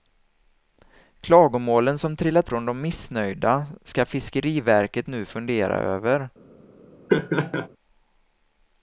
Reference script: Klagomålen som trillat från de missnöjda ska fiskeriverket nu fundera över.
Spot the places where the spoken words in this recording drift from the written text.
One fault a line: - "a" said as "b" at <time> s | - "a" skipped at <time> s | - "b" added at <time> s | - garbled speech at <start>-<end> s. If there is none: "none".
none